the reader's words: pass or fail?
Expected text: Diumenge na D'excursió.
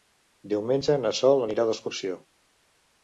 fail